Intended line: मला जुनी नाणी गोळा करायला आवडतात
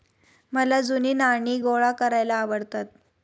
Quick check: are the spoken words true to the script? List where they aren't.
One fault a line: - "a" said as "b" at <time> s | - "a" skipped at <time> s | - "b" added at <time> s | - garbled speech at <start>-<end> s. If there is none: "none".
none